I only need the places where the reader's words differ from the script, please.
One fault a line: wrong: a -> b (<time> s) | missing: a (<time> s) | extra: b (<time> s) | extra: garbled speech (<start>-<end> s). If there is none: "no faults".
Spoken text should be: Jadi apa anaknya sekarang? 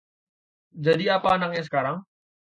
no faults